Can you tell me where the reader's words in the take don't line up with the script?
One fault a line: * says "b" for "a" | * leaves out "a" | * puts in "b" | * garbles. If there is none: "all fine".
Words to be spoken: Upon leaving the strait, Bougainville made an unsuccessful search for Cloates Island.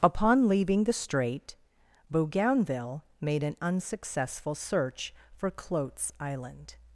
all fine